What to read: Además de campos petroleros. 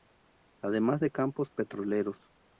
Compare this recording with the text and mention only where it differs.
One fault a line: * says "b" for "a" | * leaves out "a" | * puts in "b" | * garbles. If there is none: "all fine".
all fine